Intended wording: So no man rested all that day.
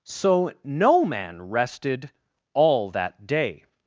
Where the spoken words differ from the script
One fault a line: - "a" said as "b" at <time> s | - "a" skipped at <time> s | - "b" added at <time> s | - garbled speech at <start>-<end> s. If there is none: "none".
none